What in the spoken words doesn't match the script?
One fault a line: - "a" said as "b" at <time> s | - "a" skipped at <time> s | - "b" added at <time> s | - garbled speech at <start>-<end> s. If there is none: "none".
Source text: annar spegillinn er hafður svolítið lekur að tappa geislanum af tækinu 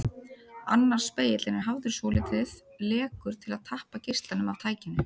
- "til" added at 3.5 s